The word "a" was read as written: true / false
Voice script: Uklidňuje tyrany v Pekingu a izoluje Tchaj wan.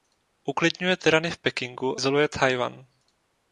false